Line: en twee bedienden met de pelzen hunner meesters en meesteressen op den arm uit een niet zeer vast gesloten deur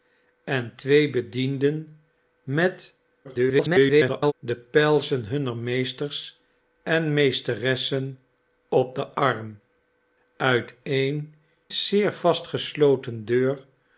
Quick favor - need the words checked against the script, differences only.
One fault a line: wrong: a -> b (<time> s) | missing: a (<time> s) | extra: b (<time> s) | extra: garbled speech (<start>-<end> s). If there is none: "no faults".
extra: garbled speech (3.2-4.3 s)
missing: niet (11.3 s)